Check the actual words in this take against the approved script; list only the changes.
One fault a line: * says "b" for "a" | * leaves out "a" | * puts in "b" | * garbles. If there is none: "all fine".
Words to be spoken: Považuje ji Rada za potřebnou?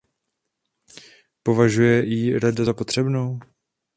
all fine